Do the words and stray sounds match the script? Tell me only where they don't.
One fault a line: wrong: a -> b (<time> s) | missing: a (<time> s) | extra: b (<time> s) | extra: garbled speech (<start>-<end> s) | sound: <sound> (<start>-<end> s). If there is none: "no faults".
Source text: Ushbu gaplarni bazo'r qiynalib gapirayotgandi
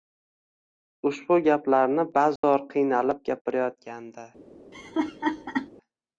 sound: dropout (2.4-2.4 s)
sound: laugh (4.7-5.7 s)